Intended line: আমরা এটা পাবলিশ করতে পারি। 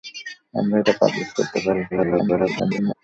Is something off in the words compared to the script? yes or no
yes